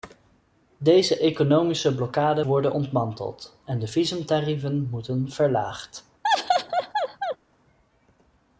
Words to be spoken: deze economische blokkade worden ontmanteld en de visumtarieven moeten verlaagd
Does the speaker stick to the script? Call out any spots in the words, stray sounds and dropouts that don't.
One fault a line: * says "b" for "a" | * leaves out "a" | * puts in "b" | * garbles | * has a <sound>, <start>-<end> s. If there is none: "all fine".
* has a laugh, 6.2-7.4 s